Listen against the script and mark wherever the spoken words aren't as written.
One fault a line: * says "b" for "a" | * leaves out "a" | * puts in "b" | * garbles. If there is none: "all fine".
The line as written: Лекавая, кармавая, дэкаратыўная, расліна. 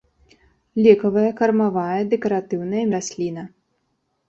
all fine